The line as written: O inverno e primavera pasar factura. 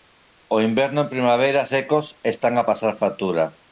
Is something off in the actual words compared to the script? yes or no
yes